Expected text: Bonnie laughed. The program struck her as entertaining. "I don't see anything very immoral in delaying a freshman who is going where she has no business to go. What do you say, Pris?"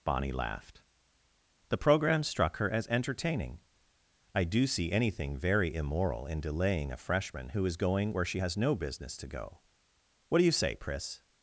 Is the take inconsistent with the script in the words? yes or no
yes